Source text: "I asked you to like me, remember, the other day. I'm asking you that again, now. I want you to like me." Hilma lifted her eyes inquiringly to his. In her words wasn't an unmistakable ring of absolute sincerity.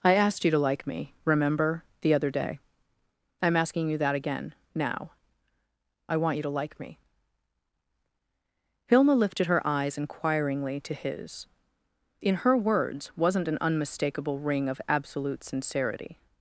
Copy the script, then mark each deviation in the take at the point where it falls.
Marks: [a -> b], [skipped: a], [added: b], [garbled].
"I asked you to like me, remember, the other day. I'm asking you that again, now. I want you to like me." Hilma lifted her eyes inquiringly to his. In her words wasn't an unmistakable ring of absolute sincerity.